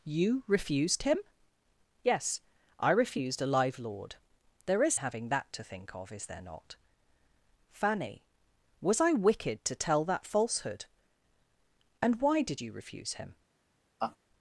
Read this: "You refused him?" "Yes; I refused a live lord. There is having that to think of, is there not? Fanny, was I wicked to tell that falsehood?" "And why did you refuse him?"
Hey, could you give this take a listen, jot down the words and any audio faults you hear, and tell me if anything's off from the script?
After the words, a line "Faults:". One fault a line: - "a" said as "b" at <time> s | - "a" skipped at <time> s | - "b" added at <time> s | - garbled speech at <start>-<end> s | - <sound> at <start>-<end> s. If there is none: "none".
"You refused him?" "Yes; I refused a live lord. There is having that to think of, is there not? Fanny, was I wicked to tell that falsehood?" "And why did you refuse him?"
Faults:
- laugh at 14.0-14.2 s